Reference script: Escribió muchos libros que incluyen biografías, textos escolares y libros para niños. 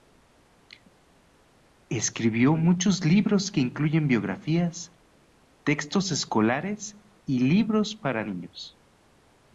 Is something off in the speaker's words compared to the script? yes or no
no